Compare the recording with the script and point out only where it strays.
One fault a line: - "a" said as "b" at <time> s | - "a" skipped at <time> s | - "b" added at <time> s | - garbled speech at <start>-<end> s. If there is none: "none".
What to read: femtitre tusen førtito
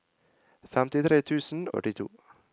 none